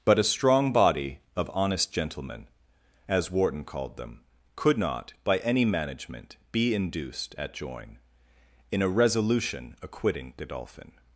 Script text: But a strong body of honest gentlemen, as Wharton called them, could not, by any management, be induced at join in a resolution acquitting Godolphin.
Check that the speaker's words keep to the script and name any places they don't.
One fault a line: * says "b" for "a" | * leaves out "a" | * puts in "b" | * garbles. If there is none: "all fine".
all fine